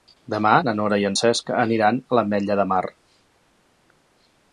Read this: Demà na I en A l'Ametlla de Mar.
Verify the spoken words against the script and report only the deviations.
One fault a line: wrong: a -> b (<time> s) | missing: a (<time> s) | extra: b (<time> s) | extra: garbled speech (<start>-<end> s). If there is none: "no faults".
extra: Nora (0.8 s)
extra: Cesc aniran (1.2 s)